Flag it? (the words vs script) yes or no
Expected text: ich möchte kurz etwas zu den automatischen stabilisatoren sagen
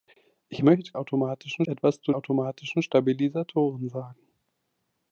yes